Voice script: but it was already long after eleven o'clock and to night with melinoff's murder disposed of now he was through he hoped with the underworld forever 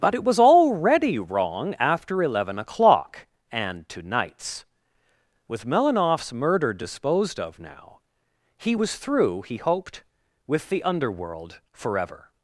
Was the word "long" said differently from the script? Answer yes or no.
yes